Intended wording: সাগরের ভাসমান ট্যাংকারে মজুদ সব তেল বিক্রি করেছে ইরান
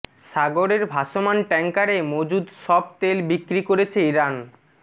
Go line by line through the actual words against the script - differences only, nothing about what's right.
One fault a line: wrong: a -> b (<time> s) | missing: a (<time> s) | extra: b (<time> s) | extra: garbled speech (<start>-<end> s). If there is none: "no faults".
no faults